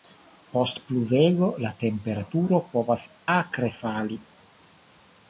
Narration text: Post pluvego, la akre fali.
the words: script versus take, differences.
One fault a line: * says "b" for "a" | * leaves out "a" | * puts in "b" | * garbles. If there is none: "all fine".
* puts in "temperaturo povas"